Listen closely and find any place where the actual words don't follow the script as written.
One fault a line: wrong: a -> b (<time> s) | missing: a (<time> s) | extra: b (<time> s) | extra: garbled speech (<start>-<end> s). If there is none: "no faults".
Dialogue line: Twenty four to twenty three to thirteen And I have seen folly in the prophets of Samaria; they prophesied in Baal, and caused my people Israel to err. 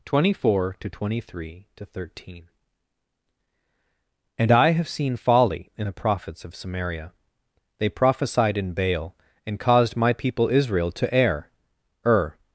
extra: err (12.1 s)